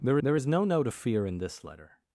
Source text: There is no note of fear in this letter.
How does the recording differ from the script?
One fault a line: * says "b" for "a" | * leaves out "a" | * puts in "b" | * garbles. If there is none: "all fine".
* puts in "there"